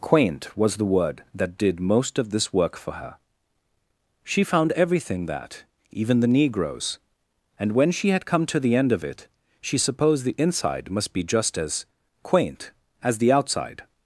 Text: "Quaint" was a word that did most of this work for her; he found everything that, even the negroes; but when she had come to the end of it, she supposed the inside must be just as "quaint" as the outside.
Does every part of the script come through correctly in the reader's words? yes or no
no